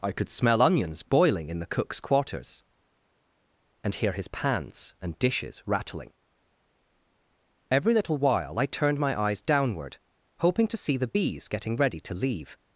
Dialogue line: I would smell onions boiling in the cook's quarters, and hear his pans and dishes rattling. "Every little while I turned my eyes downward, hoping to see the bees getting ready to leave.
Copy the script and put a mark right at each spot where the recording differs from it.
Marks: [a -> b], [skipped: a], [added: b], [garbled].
I [would -> could] smell onions boiling in the cook's quarters, and hear his pans and dishes rattling. "Every little while I turned my eyes downward, hoping to see the bees getting ready to leave.